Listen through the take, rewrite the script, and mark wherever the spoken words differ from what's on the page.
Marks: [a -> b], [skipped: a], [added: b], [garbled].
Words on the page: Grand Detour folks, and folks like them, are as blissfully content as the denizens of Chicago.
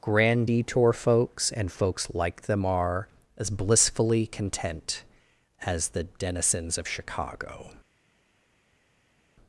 Grand Detour folks, and folks like them, are as blissfully content as the denizens of Chicago.